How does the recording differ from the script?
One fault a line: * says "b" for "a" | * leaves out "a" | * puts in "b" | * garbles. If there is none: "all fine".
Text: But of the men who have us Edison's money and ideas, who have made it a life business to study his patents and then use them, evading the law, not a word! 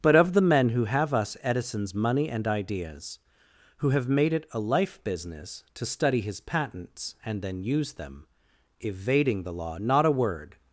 all fine